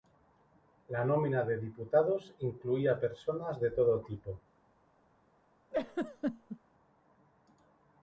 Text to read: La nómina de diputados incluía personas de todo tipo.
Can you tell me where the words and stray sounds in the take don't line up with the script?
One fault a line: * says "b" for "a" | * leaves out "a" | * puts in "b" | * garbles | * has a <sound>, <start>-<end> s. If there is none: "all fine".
* has a laugh, 5.7-6.6 s